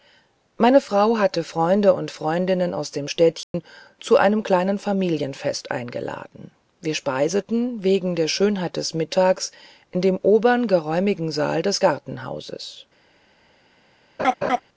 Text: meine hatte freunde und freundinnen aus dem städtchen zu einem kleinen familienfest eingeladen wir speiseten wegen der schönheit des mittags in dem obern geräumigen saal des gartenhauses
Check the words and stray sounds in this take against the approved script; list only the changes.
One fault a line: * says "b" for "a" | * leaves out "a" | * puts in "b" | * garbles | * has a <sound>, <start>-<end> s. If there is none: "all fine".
* puts in "frau"
* has a dropout, 3.4-3.5 s
* has a laugh, 14.2-14.6 s